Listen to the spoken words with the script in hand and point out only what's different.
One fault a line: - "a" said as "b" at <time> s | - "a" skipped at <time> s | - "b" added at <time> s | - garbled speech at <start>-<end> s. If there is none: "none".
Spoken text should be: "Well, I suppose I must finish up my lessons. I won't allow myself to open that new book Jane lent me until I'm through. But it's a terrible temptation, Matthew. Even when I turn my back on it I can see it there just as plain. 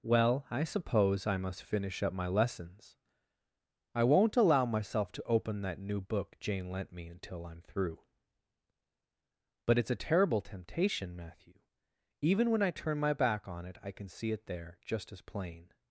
none